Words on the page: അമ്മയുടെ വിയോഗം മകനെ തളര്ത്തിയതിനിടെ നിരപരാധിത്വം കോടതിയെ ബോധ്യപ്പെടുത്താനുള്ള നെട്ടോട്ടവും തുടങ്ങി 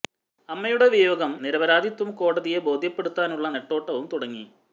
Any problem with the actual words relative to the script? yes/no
yes